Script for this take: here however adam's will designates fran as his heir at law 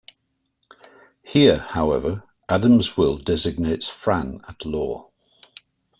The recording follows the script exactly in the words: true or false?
false